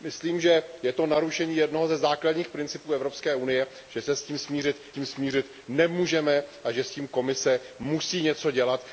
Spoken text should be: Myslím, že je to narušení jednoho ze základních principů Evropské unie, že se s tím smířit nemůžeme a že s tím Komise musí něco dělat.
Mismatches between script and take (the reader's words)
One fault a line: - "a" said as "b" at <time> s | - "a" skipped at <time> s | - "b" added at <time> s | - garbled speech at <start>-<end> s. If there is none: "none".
- "tím smířit" added at 4.9 s